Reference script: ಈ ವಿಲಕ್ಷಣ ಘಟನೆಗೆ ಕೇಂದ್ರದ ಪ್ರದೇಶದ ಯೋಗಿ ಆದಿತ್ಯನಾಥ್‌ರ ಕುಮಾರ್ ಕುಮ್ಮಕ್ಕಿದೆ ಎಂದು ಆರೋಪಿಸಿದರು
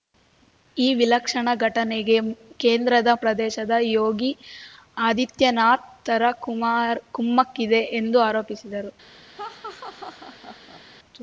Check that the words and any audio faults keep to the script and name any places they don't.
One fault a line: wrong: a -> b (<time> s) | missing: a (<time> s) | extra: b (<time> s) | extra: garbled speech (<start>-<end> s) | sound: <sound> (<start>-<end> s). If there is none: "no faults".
sound: laugh (9.3-10.8 s)